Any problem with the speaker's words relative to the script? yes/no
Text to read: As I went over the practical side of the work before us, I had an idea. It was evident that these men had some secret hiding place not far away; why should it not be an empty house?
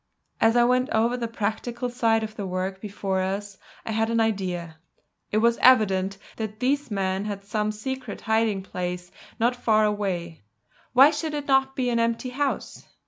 no